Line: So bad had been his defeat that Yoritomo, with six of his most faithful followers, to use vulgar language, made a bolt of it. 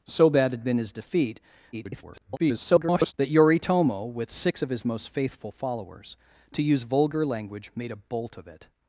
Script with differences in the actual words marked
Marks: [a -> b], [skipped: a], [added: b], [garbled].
So bad had been his defeat [garbled] that Yoritomo, with six of his most faithful followers, to use vulgar language, made a bolt of it.